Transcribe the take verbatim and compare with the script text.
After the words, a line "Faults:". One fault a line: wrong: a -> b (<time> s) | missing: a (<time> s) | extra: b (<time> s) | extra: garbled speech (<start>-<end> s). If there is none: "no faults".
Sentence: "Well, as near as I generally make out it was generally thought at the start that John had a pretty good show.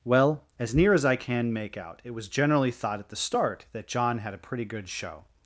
"Well, as near as I can make out it was generally thought at the start that John had a pretty good show.
Faults:
wrong: generally -> can (1.1 s)